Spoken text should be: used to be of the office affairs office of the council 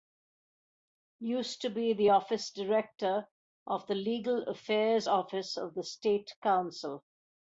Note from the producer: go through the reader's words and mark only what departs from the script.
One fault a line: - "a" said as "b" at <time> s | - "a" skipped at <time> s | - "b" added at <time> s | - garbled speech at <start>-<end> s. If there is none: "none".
- "the office director" added at 1.9 s
- "office" said as "legal" at 3.9 s
- "state" added at 5.8 s